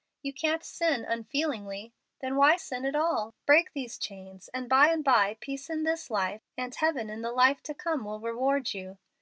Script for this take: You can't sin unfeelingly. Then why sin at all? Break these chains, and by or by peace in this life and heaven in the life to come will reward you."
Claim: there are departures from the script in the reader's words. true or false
true